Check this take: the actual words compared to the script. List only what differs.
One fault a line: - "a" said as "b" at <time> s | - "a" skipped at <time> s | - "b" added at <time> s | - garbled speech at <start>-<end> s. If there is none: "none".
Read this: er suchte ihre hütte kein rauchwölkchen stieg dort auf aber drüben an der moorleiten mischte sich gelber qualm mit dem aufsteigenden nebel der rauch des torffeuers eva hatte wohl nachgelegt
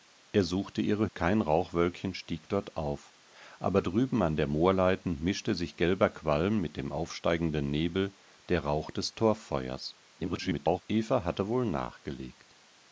- "hütte" skipped at 1.1 s
- garbled speech at 10.2-10.8 s